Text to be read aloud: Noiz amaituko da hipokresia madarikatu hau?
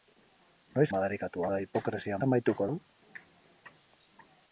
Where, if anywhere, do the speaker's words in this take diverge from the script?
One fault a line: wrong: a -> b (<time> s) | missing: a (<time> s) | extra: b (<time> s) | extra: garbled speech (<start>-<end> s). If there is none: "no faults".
wrong: amaituko -> madarikatu (1.0 s)
wrong: madarikatu -> amaituko (2.3 s)